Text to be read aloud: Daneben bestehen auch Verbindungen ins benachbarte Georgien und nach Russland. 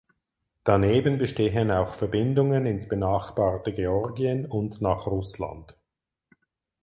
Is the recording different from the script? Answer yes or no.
no